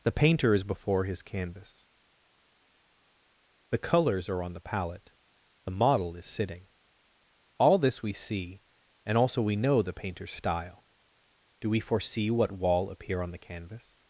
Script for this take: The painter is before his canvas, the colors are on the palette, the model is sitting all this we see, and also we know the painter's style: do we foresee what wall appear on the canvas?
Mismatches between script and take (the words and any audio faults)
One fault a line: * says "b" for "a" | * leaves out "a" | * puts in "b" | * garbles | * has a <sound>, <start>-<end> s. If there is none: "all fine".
all fine